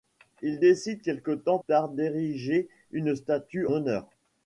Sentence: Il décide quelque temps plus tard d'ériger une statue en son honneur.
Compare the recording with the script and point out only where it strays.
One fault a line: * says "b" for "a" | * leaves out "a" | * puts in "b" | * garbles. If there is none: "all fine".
* leaves out "plus"
* leaves out "en son"